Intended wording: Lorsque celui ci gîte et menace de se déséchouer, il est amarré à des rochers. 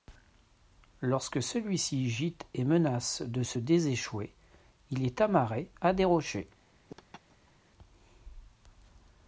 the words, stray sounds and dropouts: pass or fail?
fail